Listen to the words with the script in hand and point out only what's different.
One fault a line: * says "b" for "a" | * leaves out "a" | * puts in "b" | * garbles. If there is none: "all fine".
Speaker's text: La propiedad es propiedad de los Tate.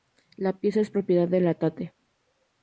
* says "pieza" for "propiedad"
* says "la" for "los"